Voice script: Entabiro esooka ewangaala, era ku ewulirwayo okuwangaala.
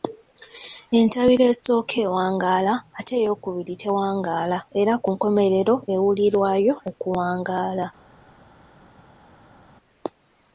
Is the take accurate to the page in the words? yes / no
no